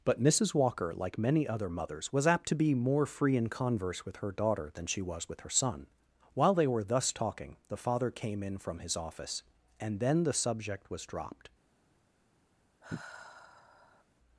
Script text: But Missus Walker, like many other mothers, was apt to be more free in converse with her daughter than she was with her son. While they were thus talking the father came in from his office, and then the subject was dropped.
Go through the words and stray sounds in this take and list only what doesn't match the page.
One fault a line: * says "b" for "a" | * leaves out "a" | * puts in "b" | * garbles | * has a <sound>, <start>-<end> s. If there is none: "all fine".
* has a sigh, 12.8-14.0 s